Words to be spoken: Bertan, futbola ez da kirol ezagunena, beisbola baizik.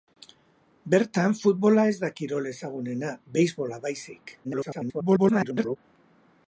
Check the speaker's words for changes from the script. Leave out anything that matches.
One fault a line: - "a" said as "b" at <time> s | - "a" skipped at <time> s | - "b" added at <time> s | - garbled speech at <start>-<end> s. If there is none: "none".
- garbled speech at 4.4-5.8 s